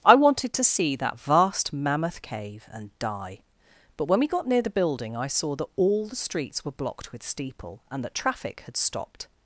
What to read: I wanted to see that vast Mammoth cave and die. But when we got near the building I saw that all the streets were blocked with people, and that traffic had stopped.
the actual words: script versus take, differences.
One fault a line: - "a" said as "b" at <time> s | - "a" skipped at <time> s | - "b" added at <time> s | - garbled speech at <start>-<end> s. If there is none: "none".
- "people" said as "steeple" at 7.2 s